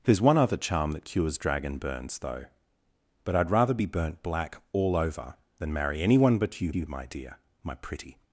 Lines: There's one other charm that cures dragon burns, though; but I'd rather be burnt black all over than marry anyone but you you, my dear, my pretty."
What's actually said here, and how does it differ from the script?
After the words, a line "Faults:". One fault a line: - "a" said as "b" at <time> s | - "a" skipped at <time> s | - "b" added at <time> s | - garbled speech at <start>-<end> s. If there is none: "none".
There's one other charm that cures dragon burns, though; but I'd rather be burnt black all over than marry anyone but you you, my dear, my pretty."
Faults:
none